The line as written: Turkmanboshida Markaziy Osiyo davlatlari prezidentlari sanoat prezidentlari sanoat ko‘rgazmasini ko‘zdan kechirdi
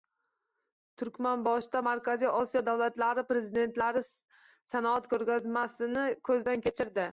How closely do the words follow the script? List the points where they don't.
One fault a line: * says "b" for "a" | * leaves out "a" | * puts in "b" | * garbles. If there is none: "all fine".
* leaves out "prezidentlari sanoat"